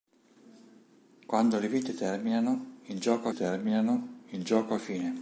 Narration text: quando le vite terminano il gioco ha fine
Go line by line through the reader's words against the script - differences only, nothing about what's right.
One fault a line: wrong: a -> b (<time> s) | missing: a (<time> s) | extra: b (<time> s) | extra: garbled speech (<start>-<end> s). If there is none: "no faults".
extra: terminano il gioco (3.3 s)